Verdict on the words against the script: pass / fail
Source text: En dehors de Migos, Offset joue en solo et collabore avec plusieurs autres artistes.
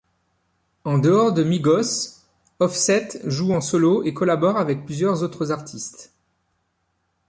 pass